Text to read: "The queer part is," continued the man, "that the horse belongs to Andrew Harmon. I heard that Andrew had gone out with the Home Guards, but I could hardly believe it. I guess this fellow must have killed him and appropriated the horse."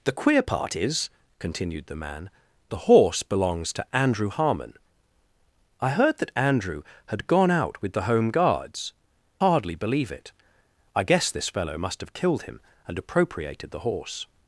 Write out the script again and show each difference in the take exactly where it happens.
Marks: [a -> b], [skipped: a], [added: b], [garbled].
"The queer part is," continued the man, [skipped: "that] the horse belongs to Andrew Harmon. I heard that Andrew had gone out with the Home Guards, [skipped: but I could] hardly believe it. I guess this fellow must have killed him and appropriated the horse."